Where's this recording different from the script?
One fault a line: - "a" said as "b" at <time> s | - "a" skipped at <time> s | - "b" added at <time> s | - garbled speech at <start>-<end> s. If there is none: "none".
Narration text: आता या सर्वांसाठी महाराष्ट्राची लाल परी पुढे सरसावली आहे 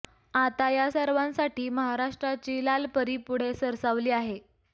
none